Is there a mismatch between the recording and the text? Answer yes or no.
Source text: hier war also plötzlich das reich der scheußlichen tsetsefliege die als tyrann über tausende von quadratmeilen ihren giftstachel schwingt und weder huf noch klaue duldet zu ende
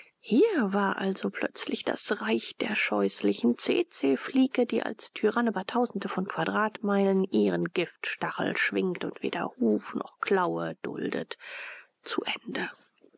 no